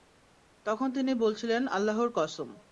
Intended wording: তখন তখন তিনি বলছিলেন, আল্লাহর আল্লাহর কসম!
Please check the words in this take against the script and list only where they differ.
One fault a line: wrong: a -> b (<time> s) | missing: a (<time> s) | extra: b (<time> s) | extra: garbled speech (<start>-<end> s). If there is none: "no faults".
missing: তখন (0.9 s)
missing: আল্লাহর (2.1 s)